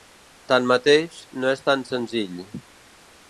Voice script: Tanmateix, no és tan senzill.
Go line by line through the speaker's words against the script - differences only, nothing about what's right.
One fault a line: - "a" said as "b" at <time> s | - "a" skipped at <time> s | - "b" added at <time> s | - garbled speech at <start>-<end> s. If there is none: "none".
none